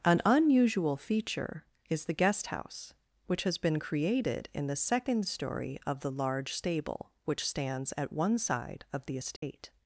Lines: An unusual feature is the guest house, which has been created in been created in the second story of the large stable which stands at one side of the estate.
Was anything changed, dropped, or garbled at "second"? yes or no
no